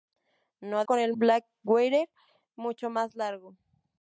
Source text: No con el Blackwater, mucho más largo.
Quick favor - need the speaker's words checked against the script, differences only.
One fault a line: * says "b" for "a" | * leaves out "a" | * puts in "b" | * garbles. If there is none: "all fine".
all fine